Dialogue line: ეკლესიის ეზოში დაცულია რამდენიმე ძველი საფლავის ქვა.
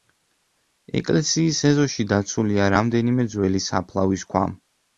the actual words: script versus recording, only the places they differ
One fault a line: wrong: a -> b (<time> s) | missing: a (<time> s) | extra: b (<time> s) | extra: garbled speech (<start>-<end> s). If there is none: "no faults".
no faults